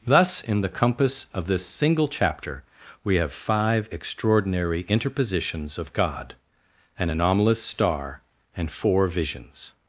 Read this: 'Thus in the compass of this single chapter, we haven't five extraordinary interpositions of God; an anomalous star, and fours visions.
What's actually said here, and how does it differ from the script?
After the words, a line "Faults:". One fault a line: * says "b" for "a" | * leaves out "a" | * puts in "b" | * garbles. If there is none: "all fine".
'Thus in the compass of this single chapter, we have five extraordinary interpositions of God; an anomalous star, and four visions.
Faults:
* says "have" for "haven't"
* says "four" for "fours"